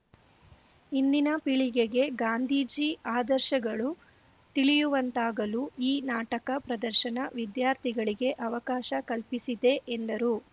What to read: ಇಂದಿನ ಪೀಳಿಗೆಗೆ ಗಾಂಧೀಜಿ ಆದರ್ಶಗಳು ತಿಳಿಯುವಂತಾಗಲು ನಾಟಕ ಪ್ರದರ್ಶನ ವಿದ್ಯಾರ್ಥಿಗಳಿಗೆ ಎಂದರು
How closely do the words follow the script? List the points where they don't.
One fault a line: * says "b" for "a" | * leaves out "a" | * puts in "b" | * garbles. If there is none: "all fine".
* puts in "ಈ"
* puts in "ಅವಕಾಶ ಕಲ್ಪಿಸಿದೆ"